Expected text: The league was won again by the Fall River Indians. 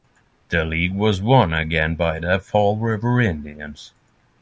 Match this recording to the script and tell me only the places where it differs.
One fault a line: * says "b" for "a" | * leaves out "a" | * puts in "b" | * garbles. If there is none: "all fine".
all fine